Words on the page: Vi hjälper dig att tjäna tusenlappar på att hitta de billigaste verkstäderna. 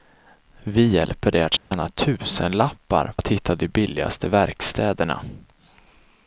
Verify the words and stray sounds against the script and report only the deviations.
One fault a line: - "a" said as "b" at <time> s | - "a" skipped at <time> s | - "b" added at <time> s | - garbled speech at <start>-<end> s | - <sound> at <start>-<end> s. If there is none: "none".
- dropout at 1.6-1.7 s
- "på" skipped at 3.1 s